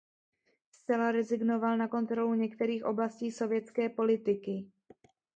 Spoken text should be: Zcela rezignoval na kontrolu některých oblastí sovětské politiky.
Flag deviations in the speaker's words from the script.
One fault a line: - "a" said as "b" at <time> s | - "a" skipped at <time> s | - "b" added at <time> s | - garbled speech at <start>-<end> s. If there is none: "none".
none